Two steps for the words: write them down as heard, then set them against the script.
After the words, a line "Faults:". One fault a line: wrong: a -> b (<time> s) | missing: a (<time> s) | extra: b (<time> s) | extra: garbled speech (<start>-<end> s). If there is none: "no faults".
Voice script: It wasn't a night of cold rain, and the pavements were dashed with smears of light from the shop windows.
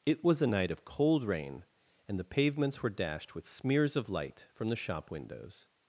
It was a night of cold rain, and the pavements were dashed with smears of light from the shop windows.
Faults:
wrong: wasn't -> was (0.2 s)